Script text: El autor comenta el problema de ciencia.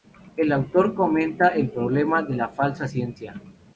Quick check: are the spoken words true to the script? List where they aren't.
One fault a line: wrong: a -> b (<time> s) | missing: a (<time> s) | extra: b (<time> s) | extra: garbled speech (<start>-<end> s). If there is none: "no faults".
extra: la falsa (2.4 s)